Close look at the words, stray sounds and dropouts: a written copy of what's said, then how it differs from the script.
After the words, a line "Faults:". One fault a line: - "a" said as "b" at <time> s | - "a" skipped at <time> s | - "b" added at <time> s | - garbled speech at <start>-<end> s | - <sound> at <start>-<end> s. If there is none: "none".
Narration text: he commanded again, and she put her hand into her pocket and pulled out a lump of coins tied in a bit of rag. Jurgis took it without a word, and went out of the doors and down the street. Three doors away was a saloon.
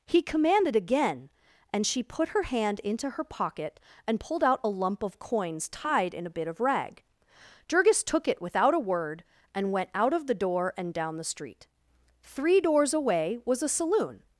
he commanded again, and she put her hand into her pocket and pulled out a lump of coins tied in a bit of rag. Jurgis took it without a word, and went out of the door and down the street. Three doors away was a saloon.
Faults:
- "doors" said as "door" at 10.3 s